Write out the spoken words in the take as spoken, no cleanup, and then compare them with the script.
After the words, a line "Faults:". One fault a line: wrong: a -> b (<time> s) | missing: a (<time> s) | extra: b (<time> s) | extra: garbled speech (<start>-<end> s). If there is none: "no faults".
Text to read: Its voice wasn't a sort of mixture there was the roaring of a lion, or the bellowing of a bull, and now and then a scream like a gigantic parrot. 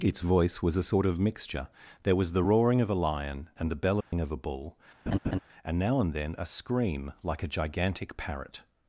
Its voice was a sort of mixture there was the roaring of a lion, and the bellowing of a bull, and now and then a scream like a gigantic parrot.
Faults:
wrong: wasn't -> was (0.6 s)
wrong: or -> and (3.6 s)